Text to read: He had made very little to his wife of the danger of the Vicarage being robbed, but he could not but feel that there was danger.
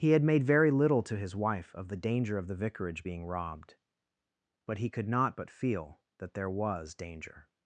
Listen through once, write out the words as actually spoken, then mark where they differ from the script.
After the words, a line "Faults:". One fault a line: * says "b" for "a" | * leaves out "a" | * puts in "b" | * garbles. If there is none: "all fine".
He had made very little to his wife of the danger of the Vicarage being robbed, but he could not but feel that there was danger.
Faults:
all fine